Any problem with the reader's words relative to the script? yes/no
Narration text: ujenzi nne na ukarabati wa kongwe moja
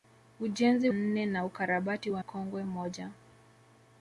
no